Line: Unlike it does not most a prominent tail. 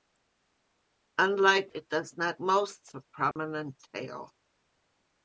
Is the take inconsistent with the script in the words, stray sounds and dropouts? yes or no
yes